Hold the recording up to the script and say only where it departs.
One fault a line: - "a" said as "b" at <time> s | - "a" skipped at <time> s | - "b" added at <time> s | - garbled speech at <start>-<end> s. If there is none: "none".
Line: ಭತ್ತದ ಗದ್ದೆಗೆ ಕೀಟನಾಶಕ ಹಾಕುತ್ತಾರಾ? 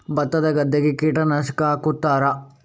none